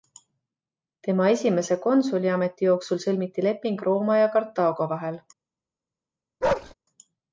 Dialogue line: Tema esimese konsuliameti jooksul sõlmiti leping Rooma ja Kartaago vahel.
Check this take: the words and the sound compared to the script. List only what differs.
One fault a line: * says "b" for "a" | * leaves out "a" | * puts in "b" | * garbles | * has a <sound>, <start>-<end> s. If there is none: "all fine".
* has a bark, 6.4-6.7 s